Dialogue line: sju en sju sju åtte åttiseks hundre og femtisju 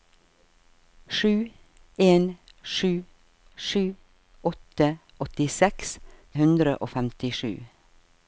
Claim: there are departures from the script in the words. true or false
false